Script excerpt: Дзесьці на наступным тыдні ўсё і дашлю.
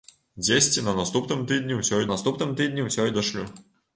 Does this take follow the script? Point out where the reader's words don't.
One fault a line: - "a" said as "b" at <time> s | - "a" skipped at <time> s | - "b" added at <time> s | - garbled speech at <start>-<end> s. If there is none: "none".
- "наступным тыдні ўсё" added at 2.1 s